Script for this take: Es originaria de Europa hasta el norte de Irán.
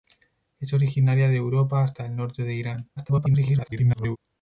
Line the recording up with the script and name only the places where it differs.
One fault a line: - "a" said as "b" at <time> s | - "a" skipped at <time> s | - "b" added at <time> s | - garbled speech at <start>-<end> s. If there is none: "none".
- garbled speech at 3.0-4.2 s